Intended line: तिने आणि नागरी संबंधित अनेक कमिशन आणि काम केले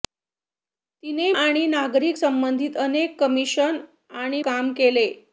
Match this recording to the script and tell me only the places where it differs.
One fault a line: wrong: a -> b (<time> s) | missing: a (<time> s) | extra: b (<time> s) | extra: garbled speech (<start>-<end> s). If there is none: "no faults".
no faults